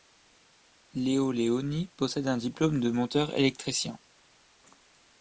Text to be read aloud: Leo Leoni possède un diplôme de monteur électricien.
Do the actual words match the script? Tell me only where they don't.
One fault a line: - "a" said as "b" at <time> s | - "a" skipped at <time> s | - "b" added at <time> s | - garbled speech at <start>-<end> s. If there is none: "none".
none